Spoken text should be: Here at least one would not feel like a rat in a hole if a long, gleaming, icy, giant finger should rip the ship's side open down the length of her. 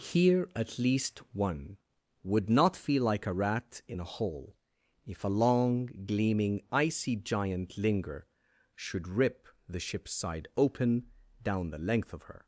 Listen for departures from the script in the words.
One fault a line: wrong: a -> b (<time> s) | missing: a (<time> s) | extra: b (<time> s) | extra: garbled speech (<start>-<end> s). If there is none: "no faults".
wrong: finger -> linger (7.8 s)